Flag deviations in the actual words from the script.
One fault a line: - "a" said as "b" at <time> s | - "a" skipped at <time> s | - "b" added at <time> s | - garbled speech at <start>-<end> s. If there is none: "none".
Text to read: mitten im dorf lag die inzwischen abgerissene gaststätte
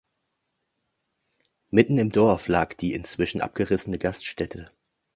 none